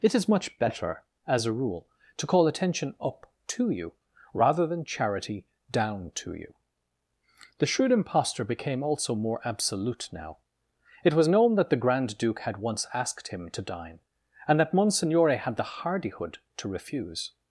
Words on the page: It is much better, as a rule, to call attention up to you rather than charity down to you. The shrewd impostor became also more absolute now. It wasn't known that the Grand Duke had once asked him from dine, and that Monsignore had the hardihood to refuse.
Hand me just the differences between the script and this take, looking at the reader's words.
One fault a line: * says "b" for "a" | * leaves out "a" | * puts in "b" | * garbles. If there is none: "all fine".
* says "was" for "wasn't"
* says "to" for "from"